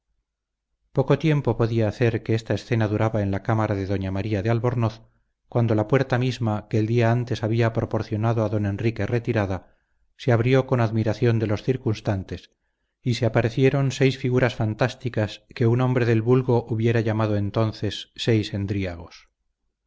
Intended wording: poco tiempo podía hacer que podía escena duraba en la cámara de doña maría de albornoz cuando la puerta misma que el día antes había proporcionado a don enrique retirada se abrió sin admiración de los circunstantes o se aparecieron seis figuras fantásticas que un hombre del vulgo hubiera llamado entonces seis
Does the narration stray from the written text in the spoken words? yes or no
yes